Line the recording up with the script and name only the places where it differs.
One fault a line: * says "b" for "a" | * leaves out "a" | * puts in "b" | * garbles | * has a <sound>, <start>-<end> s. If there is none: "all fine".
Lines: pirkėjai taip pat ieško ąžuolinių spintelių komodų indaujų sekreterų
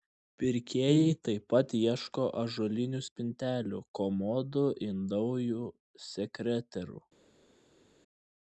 all fine